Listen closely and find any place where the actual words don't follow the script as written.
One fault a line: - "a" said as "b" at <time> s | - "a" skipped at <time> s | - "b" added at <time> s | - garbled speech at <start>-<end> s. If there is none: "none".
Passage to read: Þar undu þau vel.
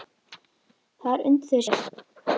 none